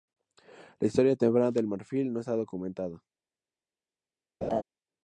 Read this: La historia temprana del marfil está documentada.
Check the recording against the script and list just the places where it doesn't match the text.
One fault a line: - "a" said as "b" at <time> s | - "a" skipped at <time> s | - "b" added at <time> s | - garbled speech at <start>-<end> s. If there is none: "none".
- "no" added at 2.1 s